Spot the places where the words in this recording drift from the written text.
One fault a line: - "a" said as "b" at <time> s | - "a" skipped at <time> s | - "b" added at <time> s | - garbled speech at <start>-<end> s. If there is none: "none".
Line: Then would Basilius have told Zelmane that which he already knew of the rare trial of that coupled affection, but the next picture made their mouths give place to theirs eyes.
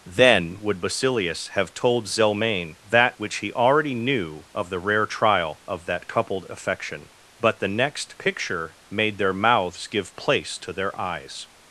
- "theirs" said as "their" at 10.7 s